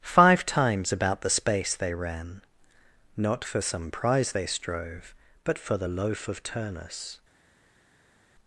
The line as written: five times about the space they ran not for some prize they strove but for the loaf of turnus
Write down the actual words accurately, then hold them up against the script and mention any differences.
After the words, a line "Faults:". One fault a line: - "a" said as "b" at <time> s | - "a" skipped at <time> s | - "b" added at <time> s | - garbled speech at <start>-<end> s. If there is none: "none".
five times about the space they ran not for some prize they strove but for the loaf of turnus
Faults:
none